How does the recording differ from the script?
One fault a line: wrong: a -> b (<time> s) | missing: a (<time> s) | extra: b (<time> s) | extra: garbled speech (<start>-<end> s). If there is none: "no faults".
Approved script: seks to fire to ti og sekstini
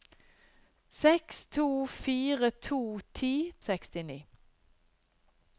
no faults